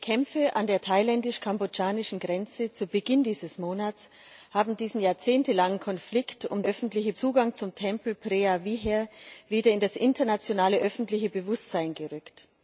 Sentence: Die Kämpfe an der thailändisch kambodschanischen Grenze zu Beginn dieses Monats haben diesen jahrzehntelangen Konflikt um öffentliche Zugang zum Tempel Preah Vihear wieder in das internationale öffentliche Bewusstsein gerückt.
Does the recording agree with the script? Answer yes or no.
yes